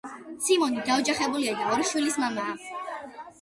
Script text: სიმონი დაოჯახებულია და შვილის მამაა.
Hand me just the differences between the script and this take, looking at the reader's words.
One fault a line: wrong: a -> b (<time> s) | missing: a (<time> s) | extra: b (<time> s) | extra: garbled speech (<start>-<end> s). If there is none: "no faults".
extra: ორი (1.8 s)